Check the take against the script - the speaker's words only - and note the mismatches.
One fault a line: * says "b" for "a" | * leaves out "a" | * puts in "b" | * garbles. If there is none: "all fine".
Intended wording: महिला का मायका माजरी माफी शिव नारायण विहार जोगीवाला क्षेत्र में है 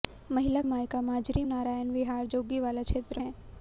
* leaves out "का"
* leaves out "माफी शिव"
* leaves out "में"